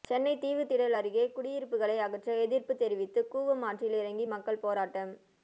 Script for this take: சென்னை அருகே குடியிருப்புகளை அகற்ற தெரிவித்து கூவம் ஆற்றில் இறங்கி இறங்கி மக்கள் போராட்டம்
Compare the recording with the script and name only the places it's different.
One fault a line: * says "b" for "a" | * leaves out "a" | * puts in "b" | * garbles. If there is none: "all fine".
* puts in "தீவுத்திடல்"
* puts in "எதிர்ப்பு"
* leaves out "இறங்கி"